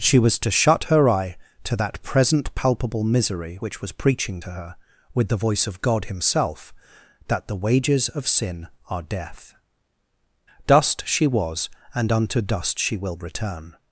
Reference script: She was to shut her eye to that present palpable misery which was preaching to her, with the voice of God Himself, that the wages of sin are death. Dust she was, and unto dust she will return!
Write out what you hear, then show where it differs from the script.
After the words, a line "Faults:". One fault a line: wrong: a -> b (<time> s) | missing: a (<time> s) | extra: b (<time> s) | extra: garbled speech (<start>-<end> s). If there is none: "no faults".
She was to shut her eye to that present palpable misery which was preaching to her, with the voice of God Himself, that the wages of sin are death. Dust she was, and unto dust she will return!
Faults:
no faults